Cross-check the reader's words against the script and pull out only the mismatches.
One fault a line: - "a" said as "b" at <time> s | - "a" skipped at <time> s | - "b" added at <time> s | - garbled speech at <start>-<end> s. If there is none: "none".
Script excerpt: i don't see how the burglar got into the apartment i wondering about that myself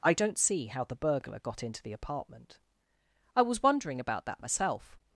- "was" added at 3.4 s